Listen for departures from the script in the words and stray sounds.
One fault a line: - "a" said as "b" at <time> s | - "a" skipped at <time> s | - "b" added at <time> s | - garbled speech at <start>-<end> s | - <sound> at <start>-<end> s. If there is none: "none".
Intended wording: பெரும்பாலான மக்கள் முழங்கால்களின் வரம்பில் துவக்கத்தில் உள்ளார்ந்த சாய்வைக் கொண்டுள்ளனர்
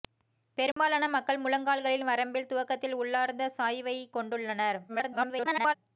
- dropout at 0.7-0.8 s
- garbled speech at 4.9-5.7 s